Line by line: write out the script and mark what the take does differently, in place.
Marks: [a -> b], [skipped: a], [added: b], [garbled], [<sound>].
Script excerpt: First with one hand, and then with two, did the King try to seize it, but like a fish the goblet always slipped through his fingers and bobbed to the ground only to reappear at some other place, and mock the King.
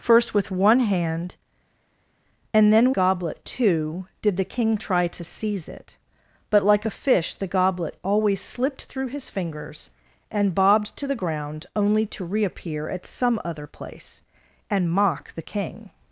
First with one hand, and then [with -> goblet] two, did the King try to seize it, but like a fish the goblet always slipped through his fingers and bobbed to the ground only to reappear at some other place, and mock the King.